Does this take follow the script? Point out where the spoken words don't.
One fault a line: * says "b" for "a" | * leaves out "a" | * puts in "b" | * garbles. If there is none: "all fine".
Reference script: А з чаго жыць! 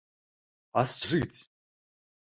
* leaves out "чаго"